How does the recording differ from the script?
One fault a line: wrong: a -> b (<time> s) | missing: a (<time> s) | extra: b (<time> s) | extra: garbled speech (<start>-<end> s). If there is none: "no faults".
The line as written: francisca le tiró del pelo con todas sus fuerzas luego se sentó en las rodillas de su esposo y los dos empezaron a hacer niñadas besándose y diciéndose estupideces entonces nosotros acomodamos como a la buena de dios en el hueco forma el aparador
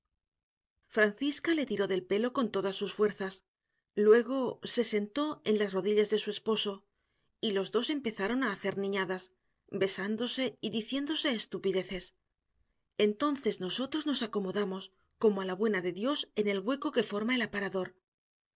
extra: nos (14.1 s)
extra: que (16.9 s)